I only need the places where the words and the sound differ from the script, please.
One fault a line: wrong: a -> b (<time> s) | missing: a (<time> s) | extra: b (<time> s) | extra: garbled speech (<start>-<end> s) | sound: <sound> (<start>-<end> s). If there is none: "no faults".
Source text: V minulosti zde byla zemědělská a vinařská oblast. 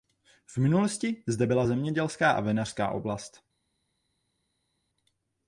no faults